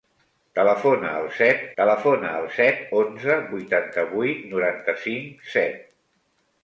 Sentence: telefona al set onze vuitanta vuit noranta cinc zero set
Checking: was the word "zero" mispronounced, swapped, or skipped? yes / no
yes